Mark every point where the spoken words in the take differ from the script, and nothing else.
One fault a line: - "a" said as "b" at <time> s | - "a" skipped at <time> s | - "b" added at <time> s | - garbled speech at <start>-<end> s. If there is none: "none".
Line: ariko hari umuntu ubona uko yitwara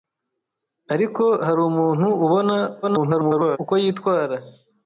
- garbled speech at 2.8-3.6 s